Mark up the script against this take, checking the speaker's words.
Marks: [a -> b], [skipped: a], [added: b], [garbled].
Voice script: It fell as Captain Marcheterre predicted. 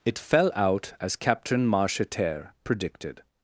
It fell [added: out] as Captain Marcheterre predicted.